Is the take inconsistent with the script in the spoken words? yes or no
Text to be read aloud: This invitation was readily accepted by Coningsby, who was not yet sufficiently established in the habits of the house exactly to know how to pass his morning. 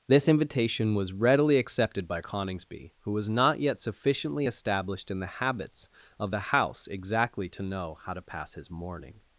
no